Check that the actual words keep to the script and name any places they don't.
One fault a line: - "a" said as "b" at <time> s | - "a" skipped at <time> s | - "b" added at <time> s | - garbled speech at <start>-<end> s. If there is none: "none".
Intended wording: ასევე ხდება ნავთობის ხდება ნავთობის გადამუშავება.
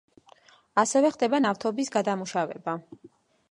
- "ხდება ნავთობის" skipped at 1.9 s